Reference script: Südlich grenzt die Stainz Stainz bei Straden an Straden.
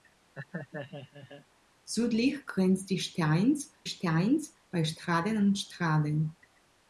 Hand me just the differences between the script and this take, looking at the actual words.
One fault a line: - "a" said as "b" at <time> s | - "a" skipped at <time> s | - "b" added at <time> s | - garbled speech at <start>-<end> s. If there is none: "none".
none